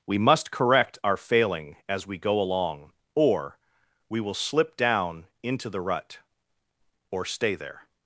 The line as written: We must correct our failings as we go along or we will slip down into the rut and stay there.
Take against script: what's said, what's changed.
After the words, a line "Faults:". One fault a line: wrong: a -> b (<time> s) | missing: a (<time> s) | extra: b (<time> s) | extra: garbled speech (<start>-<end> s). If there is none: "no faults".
We must correct our failing as we go along or we will slip down into the rut or stay there.
Faults:
wrong: failings -> failing (1.2 s)
wrong: and -> or (7.1 s)